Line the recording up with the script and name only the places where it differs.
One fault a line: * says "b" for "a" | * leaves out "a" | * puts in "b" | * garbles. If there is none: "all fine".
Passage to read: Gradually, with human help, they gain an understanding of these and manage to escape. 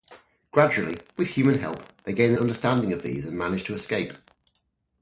all fine